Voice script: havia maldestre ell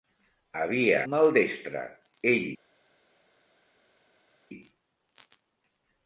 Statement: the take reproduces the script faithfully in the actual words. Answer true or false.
true